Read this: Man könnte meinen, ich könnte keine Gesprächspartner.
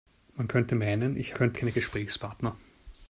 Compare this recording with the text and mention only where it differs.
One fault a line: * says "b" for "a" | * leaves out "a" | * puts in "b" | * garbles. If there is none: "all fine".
all fine